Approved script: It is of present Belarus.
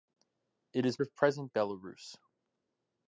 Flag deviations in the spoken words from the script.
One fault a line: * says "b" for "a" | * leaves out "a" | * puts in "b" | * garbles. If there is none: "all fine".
all fine